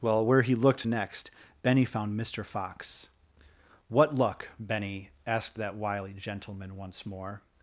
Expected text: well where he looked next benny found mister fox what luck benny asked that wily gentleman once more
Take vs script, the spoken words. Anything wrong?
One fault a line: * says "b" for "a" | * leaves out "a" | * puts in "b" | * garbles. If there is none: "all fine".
all fine